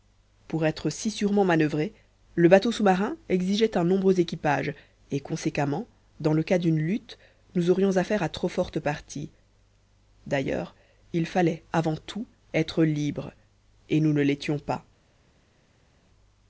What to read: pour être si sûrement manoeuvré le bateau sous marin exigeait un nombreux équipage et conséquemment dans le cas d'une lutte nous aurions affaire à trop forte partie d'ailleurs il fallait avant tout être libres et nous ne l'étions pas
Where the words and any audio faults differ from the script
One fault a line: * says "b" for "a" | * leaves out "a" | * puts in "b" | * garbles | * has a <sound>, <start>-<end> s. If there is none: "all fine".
all fine